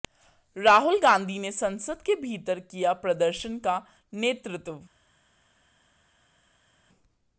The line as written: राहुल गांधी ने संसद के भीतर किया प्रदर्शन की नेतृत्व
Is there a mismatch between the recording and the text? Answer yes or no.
yes